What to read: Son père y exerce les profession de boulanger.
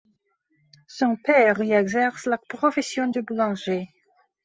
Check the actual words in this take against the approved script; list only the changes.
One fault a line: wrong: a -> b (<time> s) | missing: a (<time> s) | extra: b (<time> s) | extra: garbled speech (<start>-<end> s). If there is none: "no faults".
wrong: les -> la (2.2 s)